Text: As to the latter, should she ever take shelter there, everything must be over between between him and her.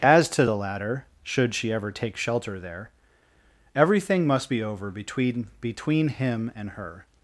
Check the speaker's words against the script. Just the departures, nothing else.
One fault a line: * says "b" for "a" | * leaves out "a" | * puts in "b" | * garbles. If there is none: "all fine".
all fine